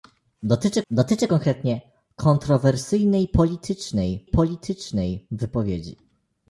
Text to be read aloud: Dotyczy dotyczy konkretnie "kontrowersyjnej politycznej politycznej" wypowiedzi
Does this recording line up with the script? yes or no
yes